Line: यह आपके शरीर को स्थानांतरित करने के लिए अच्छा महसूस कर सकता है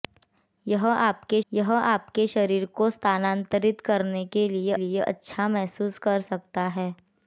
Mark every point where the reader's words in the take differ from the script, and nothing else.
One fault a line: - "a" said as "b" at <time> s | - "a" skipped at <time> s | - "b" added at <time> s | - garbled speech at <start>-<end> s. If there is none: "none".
- "यह आपके" added at 1.5 s
- "लिए" added at 4.7 s